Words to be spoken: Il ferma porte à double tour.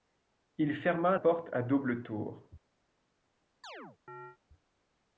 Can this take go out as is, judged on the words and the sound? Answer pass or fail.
fail